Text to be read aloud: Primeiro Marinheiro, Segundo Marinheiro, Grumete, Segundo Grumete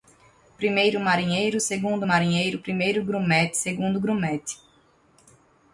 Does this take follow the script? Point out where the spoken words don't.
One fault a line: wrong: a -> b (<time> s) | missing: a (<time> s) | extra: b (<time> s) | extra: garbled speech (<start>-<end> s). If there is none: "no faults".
extra: Primeiro (2.6 s)